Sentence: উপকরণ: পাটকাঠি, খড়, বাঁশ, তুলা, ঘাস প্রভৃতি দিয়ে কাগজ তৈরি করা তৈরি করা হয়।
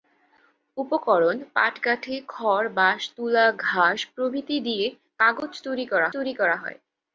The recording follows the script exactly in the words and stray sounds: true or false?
true